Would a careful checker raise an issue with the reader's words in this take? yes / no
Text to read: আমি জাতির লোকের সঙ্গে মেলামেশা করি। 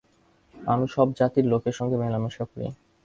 yes